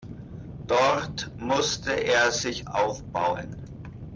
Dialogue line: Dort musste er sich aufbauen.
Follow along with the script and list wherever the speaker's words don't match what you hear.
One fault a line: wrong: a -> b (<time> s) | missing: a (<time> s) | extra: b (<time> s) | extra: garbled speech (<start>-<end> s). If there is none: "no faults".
no faults